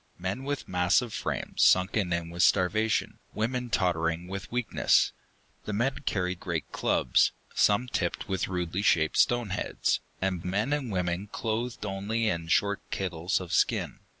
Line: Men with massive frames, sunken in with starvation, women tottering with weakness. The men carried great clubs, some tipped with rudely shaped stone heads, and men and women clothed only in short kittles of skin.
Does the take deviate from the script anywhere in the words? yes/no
no